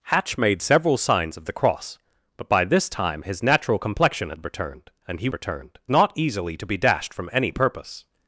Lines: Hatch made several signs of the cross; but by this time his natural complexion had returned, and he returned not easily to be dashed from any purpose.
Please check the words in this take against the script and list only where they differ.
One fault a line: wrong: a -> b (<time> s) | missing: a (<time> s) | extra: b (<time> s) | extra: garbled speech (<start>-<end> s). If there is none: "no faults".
no faults